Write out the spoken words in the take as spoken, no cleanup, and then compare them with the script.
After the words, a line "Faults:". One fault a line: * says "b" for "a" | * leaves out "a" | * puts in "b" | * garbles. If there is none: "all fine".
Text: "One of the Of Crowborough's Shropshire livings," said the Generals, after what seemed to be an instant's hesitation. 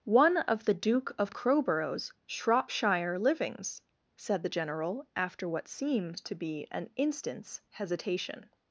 "One of the Duke of Crowborough's Shropshire livings," said the General, after what seemed to be an instant's hesitation.
Faults:
* puts in "Duke"
* says "General" for "Generals"